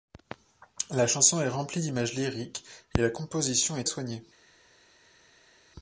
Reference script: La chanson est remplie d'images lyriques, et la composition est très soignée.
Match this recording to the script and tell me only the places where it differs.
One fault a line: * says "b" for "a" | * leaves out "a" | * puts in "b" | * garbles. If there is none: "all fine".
* leaves out "très"